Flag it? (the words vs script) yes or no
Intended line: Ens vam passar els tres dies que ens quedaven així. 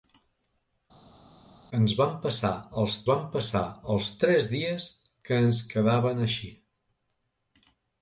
yes